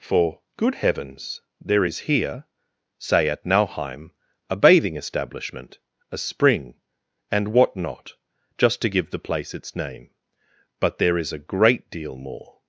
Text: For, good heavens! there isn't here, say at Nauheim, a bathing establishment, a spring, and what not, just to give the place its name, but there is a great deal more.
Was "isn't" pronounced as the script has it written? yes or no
no